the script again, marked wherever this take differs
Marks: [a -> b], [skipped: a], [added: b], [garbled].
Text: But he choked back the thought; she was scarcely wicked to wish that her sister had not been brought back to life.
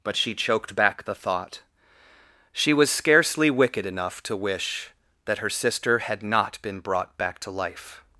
But [he -> she] choked back the thought; she was scarcely wicked [added: enough] to wish that her sister had not been brought back to life.